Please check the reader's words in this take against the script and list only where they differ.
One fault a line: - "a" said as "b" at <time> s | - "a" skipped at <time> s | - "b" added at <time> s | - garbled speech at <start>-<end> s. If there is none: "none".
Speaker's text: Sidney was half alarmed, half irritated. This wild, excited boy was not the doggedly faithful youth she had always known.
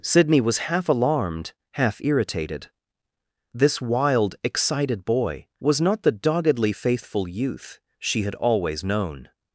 none